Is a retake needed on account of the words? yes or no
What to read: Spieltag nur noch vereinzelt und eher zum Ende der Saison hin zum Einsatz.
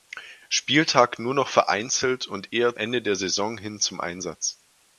yes